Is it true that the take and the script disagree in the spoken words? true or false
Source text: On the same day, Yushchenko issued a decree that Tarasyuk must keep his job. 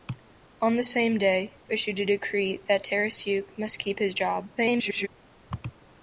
true